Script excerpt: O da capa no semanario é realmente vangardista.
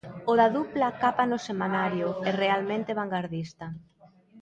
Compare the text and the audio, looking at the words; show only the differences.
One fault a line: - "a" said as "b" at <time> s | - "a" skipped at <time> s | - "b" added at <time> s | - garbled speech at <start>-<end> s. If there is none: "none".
- "dupla" added at 0.6 s